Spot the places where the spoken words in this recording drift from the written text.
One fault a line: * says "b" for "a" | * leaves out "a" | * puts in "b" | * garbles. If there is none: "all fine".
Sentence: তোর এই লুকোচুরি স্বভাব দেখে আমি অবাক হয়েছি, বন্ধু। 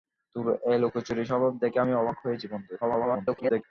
* garbles